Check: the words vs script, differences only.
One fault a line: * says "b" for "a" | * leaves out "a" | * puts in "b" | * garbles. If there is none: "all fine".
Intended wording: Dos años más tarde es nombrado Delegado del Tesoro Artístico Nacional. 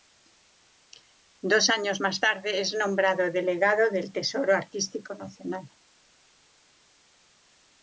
all fine